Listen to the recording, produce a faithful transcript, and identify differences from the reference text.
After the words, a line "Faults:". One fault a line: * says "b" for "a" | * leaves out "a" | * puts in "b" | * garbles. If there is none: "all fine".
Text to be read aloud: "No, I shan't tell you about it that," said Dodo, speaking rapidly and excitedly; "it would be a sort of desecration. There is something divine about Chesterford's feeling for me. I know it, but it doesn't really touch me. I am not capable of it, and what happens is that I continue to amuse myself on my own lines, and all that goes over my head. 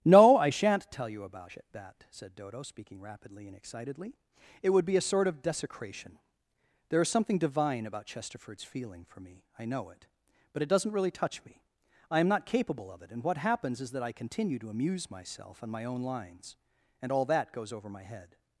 "No, I shan't tell you about it that," said Dodo, speaking rapidly and excitedly; "it would be a sort of desecration. There is something divine about Chesterford's feeling for me. I know it, but it doesn't really touch me. I am not capable of it, and what happens is that I continue to amuse myself on my own lines, and all that goes over my head.
Faults:
all fine